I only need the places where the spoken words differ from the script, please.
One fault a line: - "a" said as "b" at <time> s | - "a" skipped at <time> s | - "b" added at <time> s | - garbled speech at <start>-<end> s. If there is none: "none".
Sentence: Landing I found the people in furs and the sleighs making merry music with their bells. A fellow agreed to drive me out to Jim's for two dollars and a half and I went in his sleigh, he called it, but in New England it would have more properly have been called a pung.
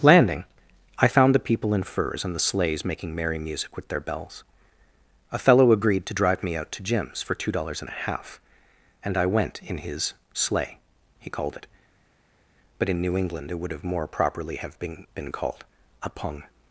- "been" added at 15.1 s